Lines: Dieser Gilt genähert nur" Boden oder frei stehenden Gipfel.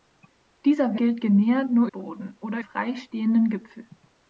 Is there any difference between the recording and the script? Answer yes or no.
no